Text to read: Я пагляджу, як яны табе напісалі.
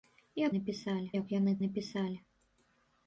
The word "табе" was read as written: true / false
false